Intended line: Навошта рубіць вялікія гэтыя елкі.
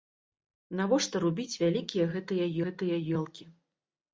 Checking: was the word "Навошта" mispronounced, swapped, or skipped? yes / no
no